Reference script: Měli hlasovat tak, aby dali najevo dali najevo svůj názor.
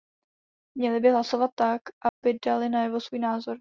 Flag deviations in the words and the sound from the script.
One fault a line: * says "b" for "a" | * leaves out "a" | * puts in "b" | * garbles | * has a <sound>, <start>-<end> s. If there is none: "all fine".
* puts in "by"
* has a dropout, 2.1-2.2 s
* leaves out "dali najevo"